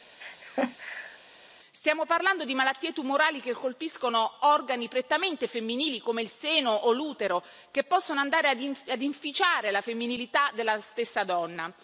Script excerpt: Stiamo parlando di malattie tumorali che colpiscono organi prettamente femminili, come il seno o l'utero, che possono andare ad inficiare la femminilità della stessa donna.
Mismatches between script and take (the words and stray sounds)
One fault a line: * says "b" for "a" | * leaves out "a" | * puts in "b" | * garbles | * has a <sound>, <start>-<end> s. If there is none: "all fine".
* has a laugh, 0.2-1.2 s